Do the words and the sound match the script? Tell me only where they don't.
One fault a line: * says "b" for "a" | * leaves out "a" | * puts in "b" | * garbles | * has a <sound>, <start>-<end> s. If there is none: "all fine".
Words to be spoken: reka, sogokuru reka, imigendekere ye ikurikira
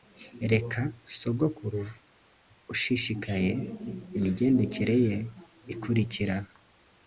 * says "ushishikaye" for "reka"